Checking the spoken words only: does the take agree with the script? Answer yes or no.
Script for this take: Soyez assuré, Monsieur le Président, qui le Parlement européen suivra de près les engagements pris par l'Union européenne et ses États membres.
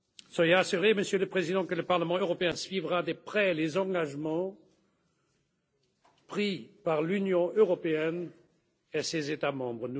no